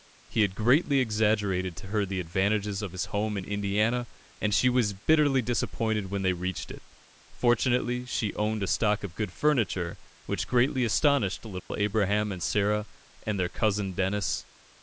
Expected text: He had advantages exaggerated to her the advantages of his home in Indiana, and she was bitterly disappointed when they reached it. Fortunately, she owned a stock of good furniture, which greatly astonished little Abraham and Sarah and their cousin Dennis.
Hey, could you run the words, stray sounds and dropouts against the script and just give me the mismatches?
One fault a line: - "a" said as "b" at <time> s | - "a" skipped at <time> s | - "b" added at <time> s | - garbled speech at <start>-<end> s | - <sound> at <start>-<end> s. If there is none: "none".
- "advantages" said as "greatly" at 0.6 s
- dropout at 11.6-11.7 s